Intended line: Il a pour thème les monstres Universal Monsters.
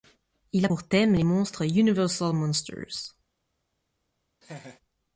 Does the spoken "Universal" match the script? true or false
true